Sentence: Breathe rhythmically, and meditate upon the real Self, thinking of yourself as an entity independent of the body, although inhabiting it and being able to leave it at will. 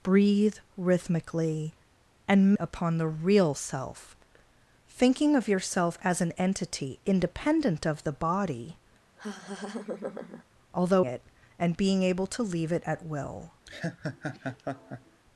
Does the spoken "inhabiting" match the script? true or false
false